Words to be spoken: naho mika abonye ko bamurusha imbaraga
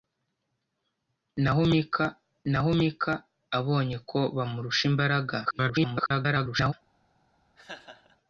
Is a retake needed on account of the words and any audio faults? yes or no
yes